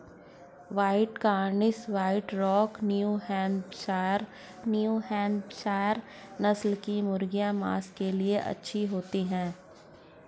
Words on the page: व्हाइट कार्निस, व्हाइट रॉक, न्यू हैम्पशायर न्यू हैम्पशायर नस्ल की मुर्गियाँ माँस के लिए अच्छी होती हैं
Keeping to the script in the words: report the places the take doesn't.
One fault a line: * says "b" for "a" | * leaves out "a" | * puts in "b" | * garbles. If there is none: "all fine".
all fine